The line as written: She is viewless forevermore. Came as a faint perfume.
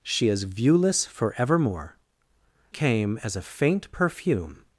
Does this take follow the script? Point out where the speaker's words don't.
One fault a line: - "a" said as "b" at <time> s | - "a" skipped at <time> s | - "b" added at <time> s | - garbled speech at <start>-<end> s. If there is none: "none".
none